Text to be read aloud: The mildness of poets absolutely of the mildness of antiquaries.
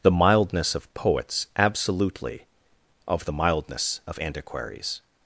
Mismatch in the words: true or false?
false